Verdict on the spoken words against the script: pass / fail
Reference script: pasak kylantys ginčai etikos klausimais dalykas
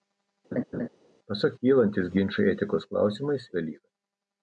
pass